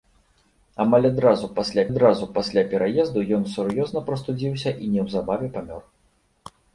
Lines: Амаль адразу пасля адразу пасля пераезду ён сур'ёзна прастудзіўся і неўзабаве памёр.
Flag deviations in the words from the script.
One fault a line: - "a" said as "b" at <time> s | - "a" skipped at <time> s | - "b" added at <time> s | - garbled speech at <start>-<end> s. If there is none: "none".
none